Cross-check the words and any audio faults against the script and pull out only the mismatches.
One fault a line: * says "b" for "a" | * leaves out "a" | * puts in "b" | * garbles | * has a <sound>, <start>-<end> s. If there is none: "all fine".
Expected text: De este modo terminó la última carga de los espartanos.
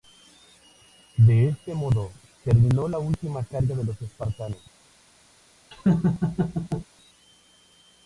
* has a laugh, 5.7-6.9 s